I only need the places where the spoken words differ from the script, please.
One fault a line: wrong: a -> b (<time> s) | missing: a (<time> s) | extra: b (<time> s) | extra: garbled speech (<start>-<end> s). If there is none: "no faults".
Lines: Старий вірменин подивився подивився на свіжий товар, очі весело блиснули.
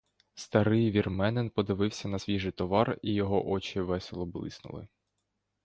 missing: подивився (2.1 s)
extra: і його (3.0 s)